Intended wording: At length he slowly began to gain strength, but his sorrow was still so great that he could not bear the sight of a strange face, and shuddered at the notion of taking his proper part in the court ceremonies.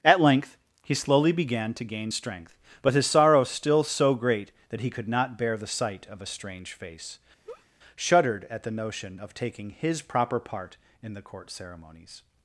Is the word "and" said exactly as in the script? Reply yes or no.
no